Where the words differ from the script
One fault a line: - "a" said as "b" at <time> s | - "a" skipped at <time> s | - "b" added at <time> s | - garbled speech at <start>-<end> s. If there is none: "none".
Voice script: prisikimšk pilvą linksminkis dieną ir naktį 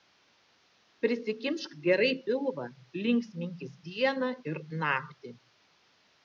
- "gerai" added at 1.8 s